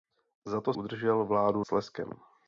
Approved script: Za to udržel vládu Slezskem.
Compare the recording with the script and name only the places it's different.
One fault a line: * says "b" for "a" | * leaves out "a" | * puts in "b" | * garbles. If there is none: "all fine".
all fine